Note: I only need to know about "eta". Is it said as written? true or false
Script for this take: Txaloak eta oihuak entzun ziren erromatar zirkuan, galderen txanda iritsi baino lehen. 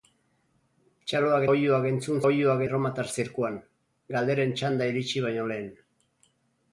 false